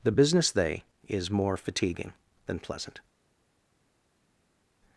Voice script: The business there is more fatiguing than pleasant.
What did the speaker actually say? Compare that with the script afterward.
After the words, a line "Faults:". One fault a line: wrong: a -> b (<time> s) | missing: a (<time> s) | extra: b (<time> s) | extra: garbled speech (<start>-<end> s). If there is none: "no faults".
The business they is more fatiguing than pleasant.
Faults:
wrong: there -> they (0.5 s)